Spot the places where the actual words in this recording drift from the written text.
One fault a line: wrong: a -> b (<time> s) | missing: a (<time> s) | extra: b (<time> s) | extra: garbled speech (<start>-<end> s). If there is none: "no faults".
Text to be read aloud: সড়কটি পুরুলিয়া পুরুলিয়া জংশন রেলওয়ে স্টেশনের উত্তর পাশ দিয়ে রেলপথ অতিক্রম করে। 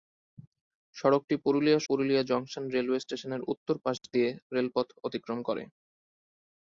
no faults